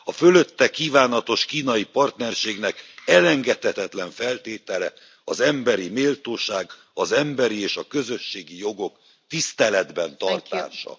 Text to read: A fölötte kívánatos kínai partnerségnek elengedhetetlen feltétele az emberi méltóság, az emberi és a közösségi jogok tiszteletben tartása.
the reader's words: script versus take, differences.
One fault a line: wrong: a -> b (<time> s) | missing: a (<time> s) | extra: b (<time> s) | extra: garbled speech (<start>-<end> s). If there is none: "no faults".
no faults